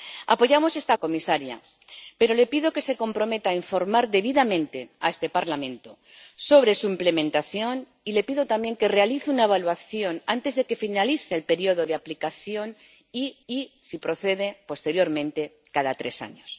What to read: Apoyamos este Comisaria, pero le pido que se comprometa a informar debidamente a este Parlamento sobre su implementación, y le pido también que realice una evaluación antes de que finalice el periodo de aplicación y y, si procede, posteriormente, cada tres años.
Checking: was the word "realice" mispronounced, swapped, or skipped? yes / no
no